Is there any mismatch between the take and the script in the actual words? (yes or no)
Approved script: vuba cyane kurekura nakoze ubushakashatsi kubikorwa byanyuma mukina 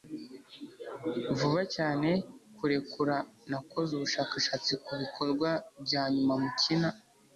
no